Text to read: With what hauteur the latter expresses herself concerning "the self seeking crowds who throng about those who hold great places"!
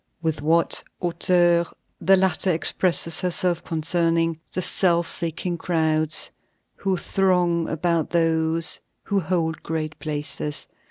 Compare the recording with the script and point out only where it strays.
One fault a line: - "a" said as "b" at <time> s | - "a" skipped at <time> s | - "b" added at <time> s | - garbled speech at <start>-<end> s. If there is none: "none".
none